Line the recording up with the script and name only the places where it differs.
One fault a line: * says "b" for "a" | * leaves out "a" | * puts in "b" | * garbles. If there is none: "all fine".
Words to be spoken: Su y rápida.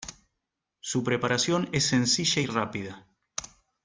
* puts in "preparación es sencilla"